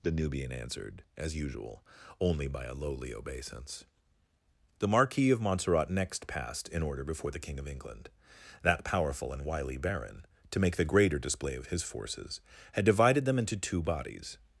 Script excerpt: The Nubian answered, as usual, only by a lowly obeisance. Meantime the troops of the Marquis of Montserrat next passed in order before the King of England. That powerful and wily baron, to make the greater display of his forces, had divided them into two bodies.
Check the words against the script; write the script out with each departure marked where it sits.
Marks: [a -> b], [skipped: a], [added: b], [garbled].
The Nubian answered, as usual, only by a lowly obeisance. [skipped: Meantime the troops of] the Marquis of Montserrat next passed in order before the King of England. That powerful and wily baron, to make the greater display of his forces, had divided them into two bodies.